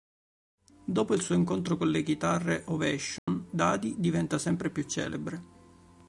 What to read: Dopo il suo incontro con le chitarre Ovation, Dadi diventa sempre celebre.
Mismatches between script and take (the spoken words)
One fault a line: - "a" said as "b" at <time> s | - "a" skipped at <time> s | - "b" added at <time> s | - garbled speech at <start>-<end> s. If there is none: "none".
- "più" added at 4.7 s